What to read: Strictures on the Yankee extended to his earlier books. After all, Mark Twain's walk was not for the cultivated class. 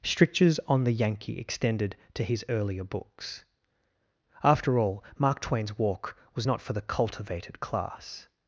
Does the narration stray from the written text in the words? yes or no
no